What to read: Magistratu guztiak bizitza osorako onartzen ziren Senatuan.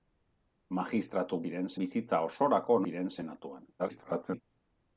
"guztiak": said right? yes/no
no